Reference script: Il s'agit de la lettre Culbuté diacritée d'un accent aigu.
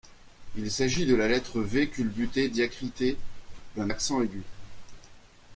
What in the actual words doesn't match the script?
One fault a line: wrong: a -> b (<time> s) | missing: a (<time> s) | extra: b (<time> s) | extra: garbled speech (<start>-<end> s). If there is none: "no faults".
extra: V (1.6 s)